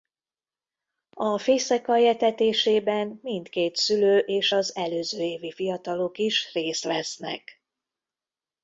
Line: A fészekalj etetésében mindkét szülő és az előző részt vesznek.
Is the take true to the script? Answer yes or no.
no